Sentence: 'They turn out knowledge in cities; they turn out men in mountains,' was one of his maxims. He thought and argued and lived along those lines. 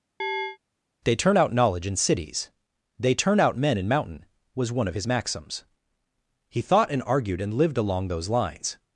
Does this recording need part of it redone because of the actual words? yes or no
yes